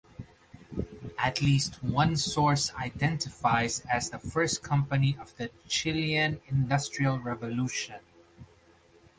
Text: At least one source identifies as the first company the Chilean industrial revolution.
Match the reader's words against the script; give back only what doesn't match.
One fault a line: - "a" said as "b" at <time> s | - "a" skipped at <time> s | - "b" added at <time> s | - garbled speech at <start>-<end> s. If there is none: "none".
- "of" added at 5.2 s